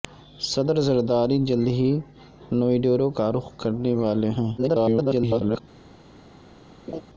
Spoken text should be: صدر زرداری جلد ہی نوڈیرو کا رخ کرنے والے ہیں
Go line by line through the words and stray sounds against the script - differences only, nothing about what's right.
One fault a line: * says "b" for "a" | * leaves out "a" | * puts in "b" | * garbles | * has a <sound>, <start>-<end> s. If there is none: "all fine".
* garbles
* has a laugh, 6.9-7.0 s